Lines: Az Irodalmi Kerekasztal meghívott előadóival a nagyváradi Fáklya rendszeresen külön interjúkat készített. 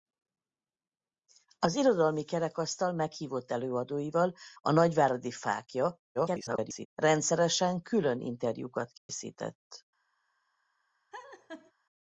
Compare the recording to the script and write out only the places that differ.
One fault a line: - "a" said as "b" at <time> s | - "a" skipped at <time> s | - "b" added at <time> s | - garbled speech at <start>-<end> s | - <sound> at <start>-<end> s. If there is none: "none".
- garbled speech at 6.1-6.9 s
- dropout at 9.0-9.1 s
- laugh at 11.1-11.7 s